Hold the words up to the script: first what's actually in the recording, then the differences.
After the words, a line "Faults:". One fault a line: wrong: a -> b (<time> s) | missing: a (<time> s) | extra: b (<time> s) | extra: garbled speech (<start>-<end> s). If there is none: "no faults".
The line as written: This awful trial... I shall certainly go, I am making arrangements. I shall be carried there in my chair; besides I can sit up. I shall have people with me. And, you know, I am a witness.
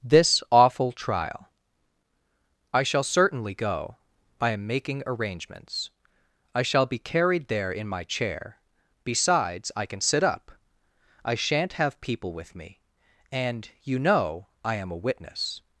This awful trial... I shall certainly go, I am making arrangements. I shall be carried there in my chair; besides I can sit up. I shan't have people with me. And, you know, I am a witness.
Faults:
wrong: shall -> shan't (11.3 s)